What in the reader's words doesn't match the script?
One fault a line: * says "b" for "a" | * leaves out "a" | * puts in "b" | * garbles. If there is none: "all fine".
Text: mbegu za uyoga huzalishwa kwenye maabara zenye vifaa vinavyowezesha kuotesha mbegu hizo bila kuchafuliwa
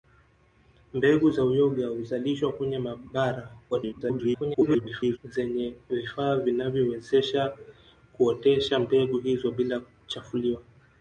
* garbles